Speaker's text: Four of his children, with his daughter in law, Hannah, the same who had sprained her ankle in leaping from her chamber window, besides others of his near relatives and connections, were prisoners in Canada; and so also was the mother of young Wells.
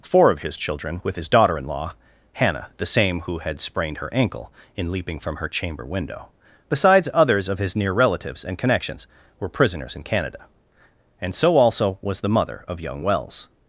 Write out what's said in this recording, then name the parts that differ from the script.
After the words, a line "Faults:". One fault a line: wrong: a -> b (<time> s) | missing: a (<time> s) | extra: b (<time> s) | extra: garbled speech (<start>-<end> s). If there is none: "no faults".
Four of his children, with his daughter in law, Hannah, the same who had sprained her ankle in leaping from her chamber window, besides others of his near relatives and connections, were prisoners in Canada; and so also was the mother of young Wells.
Faults:
no faults